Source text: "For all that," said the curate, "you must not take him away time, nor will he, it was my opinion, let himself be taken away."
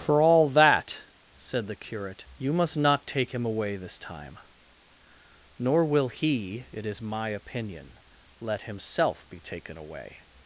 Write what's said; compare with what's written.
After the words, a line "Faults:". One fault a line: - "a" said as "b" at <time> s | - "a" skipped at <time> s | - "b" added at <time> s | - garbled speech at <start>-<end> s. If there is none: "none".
"For all that," said the curate, "you must not take him away this time, nor will he, it is my opinion, let himself be taken away."
Faults:
- "this" added at 3.8 s
- "was" said as "is" at 6.9 s